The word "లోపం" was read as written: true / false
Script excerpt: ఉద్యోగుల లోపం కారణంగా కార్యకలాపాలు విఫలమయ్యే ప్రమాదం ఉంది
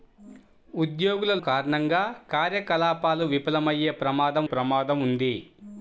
false